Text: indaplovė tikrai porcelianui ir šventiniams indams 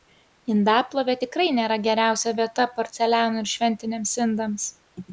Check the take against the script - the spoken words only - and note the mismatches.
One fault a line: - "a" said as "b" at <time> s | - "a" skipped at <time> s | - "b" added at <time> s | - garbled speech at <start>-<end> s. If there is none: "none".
- "nėra geriausia vieta" added at 1.6 s